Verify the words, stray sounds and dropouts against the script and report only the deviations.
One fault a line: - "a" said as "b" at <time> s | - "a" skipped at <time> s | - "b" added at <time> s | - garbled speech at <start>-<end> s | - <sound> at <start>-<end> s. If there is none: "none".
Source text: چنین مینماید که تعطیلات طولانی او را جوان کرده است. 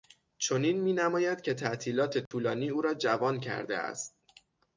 - dropout at 2.3-2.3 s